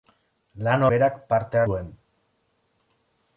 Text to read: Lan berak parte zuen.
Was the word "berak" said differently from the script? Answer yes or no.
no